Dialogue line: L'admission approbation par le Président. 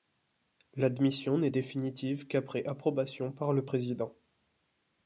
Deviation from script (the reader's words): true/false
true